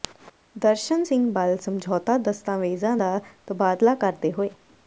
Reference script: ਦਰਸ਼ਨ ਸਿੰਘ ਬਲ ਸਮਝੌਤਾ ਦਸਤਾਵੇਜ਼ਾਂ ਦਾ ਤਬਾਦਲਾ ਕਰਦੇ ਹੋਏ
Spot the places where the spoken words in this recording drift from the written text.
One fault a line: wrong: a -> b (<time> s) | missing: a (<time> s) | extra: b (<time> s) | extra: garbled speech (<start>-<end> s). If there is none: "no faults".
no faults